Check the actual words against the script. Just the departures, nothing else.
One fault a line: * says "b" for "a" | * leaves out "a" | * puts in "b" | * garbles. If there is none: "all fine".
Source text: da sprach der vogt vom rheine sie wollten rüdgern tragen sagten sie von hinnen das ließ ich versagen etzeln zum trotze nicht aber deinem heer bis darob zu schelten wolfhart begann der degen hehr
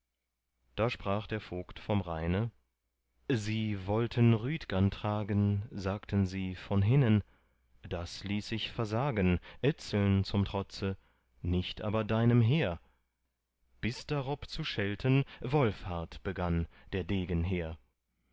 all fine